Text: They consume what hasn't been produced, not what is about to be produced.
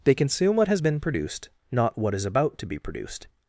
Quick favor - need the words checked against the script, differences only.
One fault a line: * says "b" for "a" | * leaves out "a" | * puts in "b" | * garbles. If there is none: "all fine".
* says "has" for "hasn't"